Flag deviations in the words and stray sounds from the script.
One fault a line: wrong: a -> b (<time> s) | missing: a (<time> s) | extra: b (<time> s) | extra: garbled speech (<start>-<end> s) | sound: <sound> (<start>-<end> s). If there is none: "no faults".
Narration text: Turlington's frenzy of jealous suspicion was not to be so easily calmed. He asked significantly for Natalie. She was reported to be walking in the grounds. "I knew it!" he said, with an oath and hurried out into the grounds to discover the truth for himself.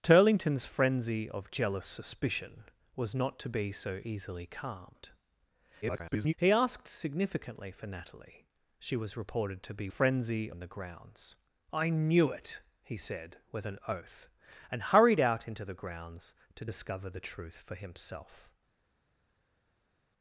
extra: garbled speech (5.8-6.3 s)
wrong: walking -> frenzy (9.9 s)